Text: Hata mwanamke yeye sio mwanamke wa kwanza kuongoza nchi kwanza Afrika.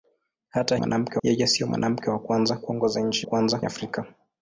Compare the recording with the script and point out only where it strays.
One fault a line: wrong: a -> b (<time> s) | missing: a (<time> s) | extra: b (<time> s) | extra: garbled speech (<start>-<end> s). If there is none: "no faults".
no faults